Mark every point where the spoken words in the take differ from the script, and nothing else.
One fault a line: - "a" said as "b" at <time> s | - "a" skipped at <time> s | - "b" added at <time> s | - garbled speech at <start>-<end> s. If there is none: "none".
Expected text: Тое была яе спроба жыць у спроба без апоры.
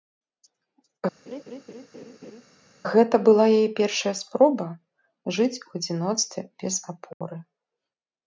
- "Тое" said as "Гэта" at 2.9 s
- "першая" added at 3.8 s
- "спроба" said as "адзіноцтве" at 5.8 s